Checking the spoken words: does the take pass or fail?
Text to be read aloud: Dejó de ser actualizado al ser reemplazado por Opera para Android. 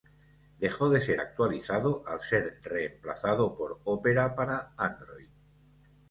pass